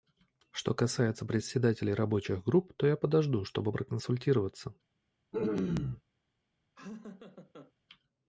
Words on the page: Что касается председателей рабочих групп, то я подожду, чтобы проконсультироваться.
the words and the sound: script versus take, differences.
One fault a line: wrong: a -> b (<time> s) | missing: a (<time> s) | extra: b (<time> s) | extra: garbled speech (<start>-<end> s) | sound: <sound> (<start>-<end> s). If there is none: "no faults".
sound: throat clearing (5.3-6.0 s)
sound: laugh (6.7-7.7 s)